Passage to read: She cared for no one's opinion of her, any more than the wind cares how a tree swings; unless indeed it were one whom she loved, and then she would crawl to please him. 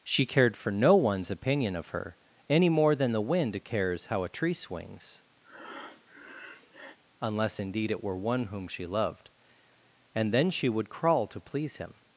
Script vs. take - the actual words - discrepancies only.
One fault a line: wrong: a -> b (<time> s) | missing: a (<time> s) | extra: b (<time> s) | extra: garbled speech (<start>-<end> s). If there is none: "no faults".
no faults